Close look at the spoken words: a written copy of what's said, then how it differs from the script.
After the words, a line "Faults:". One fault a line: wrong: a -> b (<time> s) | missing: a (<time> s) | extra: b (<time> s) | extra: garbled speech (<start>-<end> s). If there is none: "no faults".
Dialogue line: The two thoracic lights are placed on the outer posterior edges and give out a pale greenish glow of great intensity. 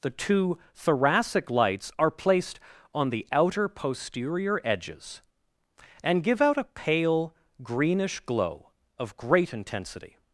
The two thoracic lights are placed on the outer posterior edges and give out a pale greenish glow of great intensity.
Faults:
no faults